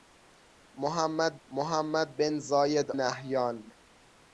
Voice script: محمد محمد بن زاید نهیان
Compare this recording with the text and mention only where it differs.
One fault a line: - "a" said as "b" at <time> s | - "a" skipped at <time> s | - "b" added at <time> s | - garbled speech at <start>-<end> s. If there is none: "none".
none